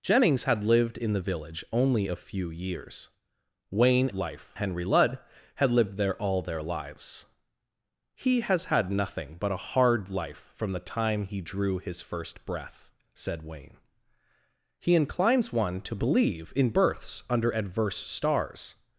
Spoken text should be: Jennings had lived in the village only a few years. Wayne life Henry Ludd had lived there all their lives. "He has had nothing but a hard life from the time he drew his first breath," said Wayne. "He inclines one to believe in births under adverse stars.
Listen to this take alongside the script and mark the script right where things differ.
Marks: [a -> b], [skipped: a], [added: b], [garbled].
Jennings had lived in the village only a few years. Wayne life Henry Ludd had lived there all their lives. "He has had nothing but a hard life from the time he drew his first breath," said Wayne. "He inclines one to believe in births under adverse stars.